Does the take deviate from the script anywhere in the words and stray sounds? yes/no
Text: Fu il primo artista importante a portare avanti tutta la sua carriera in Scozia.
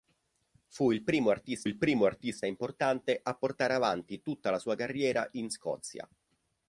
yes